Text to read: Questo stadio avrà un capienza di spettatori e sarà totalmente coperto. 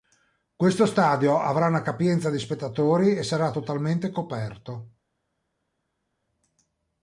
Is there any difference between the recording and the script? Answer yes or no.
yes